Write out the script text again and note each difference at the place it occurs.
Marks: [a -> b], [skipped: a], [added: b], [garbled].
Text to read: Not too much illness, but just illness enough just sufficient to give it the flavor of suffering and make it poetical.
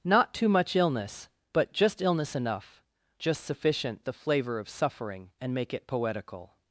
Not too much illness, but just illness enough just sufficient [skipped: to give it] the flavor of suffering and make it poetical.